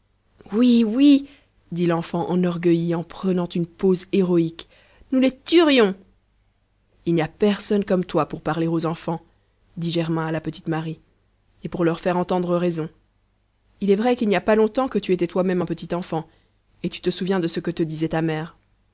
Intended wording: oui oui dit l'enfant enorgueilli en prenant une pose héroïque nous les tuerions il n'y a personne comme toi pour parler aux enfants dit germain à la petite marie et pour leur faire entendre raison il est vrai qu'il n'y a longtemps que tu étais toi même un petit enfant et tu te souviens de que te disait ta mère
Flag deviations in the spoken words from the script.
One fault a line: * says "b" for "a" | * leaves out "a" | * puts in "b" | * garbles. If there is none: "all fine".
* puts in "pas"
* puts in "ce"